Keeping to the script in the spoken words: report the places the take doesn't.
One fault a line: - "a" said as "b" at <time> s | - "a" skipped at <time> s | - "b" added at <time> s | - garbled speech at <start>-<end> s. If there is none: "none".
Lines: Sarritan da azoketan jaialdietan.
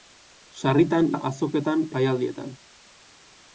none